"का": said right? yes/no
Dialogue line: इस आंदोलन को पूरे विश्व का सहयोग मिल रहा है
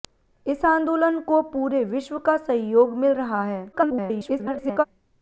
yes